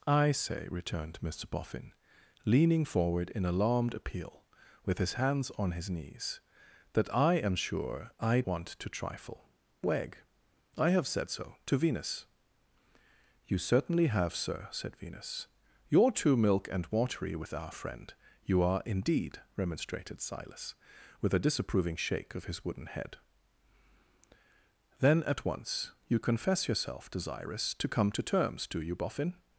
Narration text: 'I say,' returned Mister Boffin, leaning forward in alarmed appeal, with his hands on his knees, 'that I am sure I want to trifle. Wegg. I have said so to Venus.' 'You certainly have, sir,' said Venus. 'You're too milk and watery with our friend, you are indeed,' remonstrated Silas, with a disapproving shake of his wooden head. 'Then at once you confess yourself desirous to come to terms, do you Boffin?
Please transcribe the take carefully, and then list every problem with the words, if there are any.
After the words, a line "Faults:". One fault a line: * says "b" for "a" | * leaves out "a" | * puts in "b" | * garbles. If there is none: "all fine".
'I say,' returned Mister Boffin, leaning forward in alarmed appeal, with his hands on his knees, 'that I am sure I want to trifle. Wegg. I have said so to Venus.' 'You certainly have, sir,' said Venus. 'You're too milk and watery with our friend, you are indeed,' remonstrated Silas, with a disapproving shake of his wooden head. 'Then at once you confess yourself desirous to come to terms, do you Boffin?
Faults:
all fine